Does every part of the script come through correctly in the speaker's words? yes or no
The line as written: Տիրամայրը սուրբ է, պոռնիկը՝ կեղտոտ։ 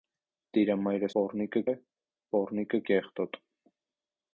no